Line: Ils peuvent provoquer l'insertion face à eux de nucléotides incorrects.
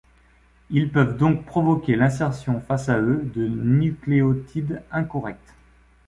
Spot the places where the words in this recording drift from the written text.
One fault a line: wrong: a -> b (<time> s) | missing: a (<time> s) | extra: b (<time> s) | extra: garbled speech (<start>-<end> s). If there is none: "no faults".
extra: donc (1.1 s)